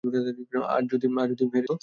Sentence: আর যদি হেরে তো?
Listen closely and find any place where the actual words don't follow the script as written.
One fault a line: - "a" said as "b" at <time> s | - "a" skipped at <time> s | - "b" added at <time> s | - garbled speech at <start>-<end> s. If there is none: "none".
none